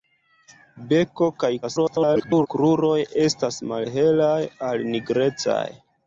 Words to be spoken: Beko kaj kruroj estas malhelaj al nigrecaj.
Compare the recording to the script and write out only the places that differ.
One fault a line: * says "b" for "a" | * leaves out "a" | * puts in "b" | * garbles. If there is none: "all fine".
* garbles